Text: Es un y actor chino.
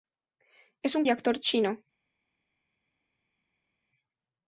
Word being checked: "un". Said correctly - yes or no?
yes